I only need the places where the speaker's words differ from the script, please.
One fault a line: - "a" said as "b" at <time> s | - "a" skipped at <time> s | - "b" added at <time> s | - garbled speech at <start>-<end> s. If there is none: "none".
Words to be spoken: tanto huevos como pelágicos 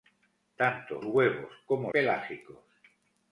none